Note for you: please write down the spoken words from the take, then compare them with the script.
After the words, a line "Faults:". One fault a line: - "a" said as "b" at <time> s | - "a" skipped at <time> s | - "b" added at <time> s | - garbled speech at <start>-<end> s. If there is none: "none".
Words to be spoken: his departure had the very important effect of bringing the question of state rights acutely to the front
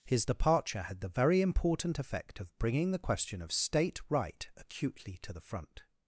his departure had the very important effect of bringing the question of state right acutely to the front
Faults:
- "rights" said as "right" at 4.1 s